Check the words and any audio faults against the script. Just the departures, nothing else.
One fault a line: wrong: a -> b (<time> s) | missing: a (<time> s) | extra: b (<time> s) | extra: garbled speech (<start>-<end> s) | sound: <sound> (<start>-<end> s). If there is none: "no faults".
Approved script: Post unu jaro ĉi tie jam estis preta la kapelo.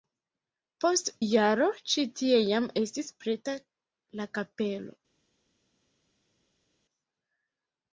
missing: unu (1.1 s)